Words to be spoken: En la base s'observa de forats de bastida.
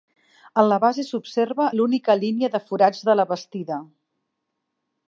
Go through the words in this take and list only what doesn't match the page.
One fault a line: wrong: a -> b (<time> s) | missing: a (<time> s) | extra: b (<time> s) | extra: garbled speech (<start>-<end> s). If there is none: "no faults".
extra: l'única línia (1.8 s)
extra: la (3.2 s)